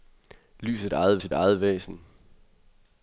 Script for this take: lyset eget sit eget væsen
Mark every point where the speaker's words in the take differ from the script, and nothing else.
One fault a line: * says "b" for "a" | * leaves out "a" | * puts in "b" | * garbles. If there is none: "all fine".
all fine